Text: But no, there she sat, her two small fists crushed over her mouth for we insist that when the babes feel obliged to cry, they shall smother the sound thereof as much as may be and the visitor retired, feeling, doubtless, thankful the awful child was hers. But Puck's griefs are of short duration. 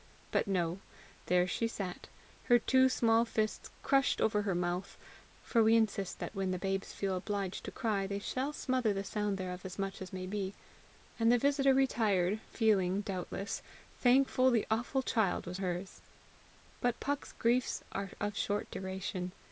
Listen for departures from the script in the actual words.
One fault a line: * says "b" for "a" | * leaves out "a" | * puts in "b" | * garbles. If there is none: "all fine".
all fine